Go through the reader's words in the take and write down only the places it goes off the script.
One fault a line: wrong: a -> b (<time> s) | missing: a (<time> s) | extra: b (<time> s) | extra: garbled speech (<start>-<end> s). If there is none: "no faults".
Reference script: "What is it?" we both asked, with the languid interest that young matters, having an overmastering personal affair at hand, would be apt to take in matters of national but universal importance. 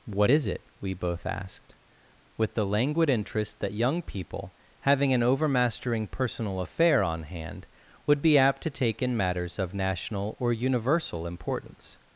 wrong: matters -> people (4.0 s)
wrong: at -> on (7.0 s)
wrong: but -> or (10.4 s)